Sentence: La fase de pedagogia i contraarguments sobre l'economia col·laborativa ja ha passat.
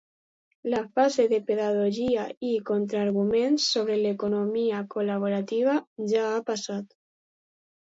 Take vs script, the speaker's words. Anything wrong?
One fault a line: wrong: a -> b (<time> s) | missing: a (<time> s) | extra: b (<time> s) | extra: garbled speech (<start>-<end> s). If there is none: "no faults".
no faults